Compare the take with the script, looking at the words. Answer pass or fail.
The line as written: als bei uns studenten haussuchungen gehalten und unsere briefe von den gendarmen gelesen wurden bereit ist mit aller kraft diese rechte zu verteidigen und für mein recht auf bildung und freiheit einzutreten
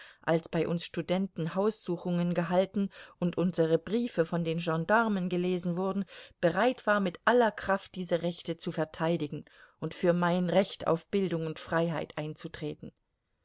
fail